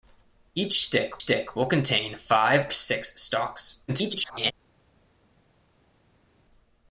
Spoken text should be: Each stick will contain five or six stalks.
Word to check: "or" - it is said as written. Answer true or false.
false